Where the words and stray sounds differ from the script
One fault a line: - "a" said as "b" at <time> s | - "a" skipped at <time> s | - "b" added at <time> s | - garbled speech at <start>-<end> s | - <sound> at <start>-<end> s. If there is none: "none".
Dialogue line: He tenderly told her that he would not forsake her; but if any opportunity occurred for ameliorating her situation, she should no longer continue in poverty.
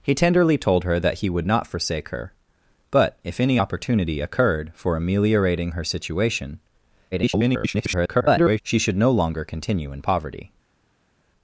- garbled speech at 7.1-8.6 s